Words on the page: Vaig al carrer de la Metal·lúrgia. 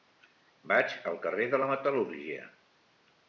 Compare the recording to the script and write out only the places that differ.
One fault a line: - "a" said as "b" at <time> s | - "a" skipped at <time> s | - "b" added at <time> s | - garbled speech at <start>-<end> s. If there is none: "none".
none